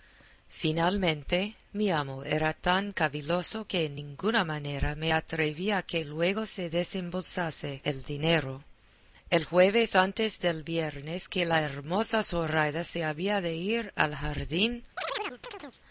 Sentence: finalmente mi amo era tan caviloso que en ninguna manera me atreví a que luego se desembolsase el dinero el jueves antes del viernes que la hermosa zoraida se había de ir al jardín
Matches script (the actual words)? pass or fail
pass